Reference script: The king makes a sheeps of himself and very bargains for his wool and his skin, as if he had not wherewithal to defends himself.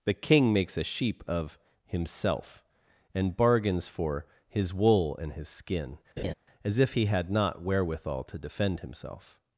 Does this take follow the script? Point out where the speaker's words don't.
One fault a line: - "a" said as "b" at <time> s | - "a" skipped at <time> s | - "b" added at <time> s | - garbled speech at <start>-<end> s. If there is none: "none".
- "sheeps" said as "sheep" at 0.8 s
- "very" skipped at 3.4 s
- "defends" said as "defend" at 8.4 s